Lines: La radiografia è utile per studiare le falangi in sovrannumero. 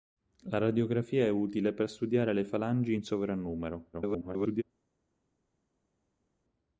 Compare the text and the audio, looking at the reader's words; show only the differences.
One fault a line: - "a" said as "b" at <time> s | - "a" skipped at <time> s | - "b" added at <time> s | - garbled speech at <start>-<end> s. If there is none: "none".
- garbled speech at 3.9-4.6 s